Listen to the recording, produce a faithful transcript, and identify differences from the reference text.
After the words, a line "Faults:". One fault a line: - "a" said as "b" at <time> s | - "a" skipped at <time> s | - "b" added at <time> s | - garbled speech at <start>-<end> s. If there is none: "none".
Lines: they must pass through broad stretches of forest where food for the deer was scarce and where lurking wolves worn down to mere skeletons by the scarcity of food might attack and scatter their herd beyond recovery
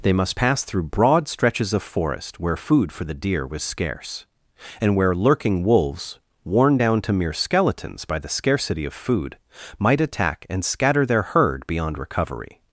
they must pass through broad stretches of forest where food for the deer was scarce and where lurking wolves worn down to mere skeletons by the scarcity of food might attack and scatter their herd beyond recovery
Faults:
none